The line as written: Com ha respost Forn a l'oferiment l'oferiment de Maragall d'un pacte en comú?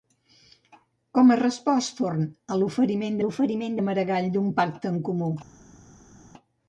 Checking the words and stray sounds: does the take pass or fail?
pass